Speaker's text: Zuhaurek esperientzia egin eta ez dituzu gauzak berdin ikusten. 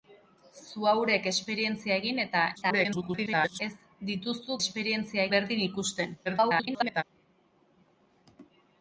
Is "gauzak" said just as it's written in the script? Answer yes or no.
no